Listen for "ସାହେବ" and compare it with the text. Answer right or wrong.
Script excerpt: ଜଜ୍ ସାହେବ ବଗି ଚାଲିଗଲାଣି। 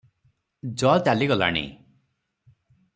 wrong